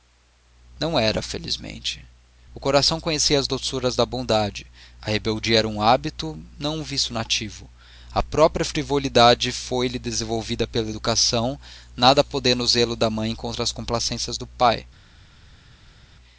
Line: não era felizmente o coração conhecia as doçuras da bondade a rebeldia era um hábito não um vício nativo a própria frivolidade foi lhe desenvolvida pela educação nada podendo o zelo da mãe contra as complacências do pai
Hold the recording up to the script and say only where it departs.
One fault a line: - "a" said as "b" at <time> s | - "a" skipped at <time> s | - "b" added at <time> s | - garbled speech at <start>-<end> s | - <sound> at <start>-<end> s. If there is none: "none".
none